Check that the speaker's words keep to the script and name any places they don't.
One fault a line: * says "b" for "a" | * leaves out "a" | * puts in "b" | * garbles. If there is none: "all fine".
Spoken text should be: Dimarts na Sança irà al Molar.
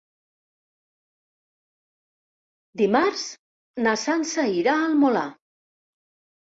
all fine